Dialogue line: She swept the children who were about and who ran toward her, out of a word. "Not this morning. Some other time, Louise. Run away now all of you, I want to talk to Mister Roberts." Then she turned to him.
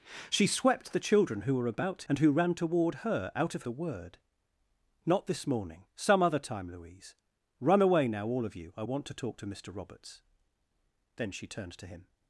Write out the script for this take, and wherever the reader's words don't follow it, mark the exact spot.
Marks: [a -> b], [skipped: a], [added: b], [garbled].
She swept the children who were about and who ran toward her, out of a word. "Not this morning. Some other time, Louise. Run away now all of you, I want to talk to Mister Roberts." Then she turned to him.